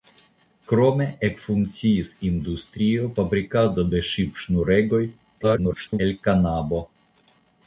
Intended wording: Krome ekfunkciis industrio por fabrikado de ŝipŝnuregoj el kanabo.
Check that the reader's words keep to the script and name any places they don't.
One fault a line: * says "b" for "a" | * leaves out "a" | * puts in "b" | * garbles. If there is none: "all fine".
* leaves out "por"
* garbles